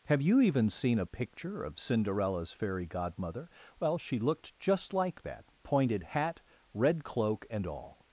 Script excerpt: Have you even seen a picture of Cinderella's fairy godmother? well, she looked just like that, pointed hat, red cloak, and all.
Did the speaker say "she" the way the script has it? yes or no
yes